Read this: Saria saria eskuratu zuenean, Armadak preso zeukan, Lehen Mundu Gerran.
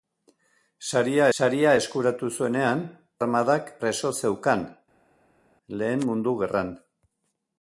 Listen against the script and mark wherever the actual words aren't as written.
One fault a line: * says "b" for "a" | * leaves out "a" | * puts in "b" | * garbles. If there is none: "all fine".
all fine